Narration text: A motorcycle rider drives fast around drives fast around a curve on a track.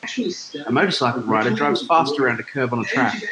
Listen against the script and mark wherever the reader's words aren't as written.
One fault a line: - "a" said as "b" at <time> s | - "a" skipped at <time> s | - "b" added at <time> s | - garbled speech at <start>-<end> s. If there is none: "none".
- "drives fast around" skipped at 2.4 s